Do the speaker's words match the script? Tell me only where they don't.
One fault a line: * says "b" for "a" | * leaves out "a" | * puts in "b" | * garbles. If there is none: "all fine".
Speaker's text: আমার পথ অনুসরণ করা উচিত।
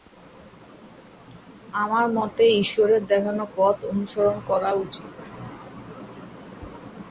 * puts in "মতে ঈশ্বরের দেখানো"